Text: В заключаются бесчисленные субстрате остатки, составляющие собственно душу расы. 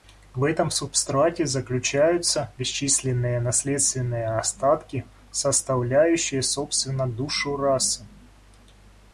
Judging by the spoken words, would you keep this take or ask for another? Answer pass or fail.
fail